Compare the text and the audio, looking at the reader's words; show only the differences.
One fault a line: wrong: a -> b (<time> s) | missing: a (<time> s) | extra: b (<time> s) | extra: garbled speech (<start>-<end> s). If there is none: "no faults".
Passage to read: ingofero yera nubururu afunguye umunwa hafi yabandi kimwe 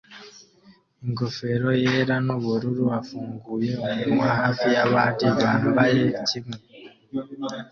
extra: bambaye (5.4 s)